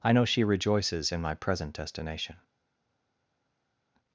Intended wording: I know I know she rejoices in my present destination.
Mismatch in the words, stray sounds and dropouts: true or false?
true